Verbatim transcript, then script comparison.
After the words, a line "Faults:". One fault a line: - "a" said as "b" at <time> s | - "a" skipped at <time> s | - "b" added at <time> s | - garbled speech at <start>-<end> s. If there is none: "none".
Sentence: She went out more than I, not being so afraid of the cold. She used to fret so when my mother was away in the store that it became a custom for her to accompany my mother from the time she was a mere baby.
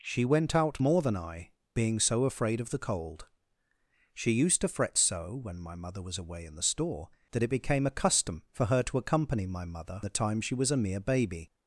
She went out more than I, being so afraid of the cold. She used to fret so when my mother was away in the store that it became a custom for her to accompany my mother the time she was a mere baby.
Faults:
- "not" skipped at 1.5 s
- "from" skipped at 10.0 s